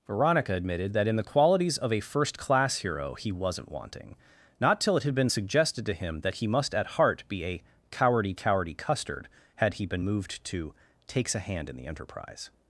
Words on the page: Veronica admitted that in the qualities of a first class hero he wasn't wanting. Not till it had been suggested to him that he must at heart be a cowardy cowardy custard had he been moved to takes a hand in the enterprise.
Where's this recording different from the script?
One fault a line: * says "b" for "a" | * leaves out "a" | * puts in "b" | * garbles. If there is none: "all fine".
all fine